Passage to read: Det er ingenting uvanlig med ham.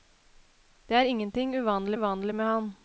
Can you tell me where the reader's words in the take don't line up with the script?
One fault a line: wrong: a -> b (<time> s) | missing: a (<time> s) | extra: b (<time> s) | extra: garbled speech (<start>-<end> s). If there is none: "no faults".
extra: uvanlig (1.9 s)